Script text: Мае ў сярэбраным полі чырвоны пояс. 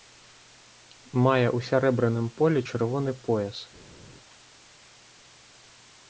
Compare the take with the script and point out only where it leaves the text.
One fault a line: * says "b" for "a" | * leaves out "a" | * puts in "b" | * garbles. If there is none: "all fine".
all fine